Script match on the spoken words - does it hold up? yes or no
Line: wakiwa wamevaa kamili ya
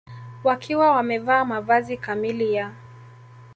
no